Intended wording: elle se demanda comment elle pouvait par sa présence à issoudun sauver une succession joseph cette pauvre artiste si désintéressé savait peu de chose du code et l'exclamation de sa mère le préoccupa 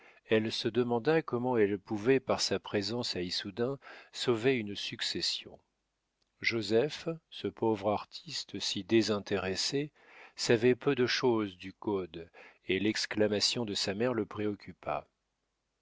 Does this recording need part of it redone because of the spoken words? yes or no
yes